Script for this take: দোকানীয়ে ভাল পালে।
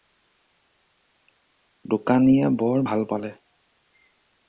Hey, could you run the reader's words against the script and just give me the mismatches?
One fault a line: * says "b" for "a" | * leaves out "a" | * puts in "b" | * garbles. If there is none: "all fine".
* puts in "বৰ"